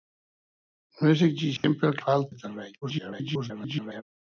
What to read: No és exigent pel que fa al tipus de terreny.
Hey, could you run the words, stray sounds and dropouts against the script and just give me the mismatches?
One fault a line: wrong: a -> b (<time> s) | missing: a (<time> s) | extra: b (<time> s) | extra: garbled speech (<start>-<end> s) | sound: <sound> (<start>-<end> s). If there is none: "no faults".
sound: dropout (1.6-1.6 s)
missing: que (1.9 s)
missing: tipus (2.3 s)
extra: garbled speech (2.8-4.0 s)